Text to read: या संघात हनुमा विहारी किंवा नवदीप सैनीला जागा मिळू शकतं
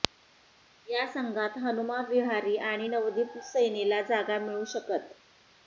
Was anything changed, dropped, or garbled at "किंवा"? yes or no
yes